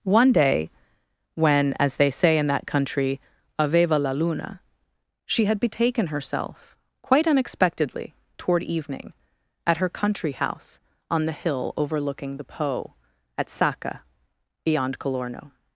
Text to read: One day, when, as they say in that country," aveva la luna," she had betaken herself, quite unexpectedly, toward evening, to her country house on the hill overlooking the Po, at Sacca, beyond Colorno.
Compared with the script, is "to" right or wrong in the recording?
wrong